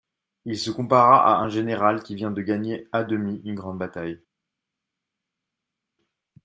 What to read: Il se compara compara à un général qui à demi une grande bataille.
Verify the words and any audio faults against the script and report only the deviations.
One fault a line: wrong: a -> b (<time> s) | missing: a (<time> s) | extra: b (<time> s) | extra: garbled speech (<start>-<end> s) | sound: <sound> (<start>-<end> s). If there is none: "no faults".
missing: compara (1.4 s)
extra: vient de gagner (2.1 s)